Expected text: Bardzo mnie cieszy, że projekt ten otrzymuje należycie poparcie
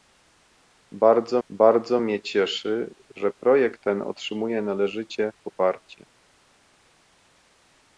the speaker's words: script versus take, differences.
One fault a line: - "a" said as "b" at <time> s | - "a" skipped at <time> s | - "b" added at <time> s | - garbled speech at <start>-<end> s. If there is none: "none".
- "bardzo" added at 1.5 s